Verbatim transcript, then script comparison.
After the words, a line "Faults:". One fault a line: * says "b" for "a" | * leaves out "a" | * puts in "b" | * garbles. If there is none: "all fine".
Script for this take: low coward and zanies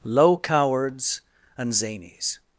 low cowards and zanies
Faults:
* says "cowards" for "coward"